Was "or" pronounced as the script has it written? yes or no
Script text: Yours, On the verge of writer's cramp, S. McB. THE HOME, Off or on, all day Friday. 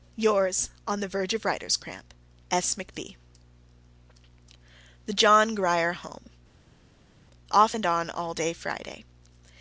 no